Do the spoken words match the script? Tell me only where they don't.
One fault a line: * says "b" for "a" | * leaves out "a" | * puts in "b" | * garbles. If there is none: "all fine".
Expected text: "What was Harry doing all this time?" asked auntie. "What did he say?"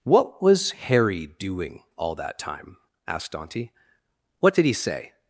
* says "that" for "this"